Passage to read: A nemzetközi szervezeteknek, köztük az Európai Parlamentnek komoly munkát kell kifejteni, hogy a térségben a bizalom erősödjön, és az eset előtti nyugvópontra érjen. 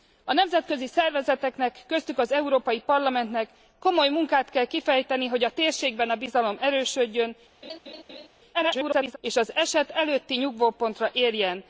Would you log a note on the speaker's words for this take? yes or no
yes